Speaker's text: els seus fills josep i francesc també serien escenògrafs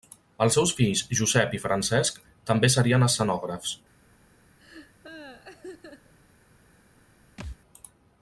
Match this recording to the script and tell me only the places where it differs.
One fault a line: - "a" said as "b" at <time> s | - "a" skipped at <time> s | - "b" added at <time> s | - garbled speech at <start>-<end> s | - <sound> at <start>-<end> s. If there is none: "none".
- laugh at 4.6-6.1 s
- thud at 7.4-7.6 s